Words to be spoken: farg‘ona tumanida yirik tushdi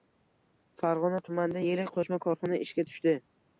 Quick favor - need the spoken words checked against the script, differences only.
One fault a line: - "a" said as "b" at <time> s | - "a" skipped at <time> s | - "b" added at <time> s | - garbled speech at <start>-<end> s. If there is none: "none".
- "qo‘shma korxona ishga" added at 2.0 s